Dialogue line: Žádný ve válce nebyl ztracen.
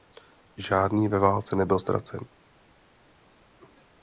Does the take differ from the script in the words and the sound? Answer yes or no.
no